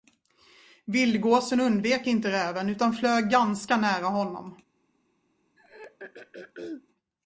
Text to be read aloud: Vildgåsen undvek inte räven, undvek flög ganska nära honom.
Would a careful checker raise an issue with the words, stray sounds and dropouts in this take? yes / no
yes